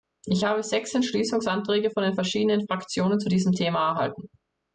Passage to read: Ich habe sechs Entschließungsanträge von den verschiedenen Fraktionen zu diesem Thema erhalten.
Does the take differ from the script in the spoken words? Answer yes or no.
no